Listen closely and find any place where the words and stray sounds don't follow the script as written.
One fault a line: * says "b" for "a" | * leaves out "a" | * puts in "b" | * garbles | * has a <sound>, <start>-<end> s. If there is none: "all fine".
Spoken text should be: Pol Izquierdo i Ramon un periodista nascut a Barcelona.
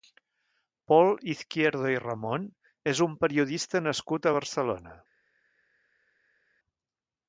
* puts in "és"